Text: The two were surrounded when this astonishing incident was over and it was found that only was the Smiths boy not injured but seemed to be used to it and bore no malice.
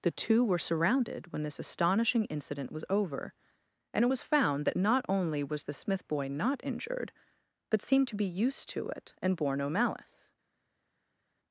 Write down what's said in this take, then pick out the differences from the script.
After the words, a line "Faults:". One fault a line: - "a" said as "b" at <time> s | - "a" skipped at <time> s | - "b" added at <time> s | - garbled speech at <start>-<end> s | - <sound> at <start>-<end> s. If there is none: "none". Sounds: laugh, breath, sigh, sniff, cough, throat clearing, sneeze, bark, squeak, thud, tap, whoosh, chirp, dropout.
The two were surrounded when this astonishing incident was over and it was found that not only was the Smith boy not injured but seemed to be used to it and bore no malice.
Faults:
- "not" added at 4.8 s
- "Smiths" said as "Smith" at 5.7 s